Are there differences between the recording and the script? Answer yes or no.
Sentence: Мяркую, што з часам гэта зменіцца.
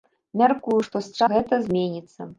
yes